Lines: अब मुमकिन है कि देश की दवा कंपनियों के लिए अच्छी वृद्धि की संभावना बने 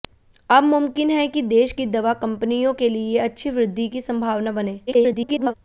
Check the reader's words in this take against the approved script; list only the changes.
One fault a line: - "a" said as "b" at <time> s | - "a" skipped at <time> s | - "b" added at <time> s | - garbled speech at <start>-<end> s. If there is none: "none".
- garbled speech at 4.9-5.5 s